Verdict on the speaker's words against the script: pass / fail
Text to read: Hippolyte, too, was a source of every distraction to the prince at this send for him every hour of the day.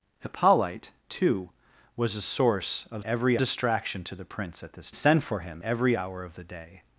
pass